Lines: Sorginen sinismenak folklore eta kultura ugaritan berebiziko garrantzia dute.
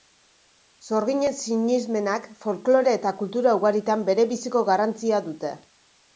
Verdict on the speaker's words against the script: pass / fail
pass